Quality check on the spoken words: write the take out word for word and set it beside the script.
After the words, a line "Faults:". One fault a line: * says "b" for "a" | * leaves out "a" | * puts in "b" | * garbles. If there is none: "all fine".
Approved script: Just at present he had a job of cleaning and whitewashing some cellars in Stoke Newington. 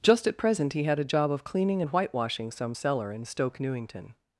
Just at present he had a job of cleaning and whitewashing some cellar in Stoke Newington.
Faults:
* says "cellar" for "cellars"